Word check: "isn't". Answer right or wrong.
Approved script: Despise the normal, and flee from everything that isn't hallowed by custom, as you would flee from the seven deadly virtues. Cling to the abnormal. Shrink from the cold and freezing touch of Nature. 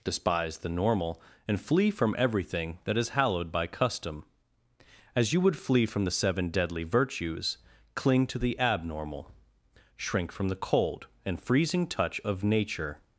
wrong